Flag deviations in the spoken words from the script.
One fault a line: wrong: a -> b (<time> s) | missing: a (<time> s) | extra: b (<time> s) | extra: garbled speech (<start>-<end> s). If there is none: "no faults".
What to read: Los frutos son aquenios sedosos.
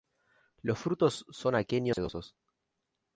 no faults